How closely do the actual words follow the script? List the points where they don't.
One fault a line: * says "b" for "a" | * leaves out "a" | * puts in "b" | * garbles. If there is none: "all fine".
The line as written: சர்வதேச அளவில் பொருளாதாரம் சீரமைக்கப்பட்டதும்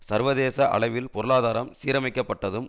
all fine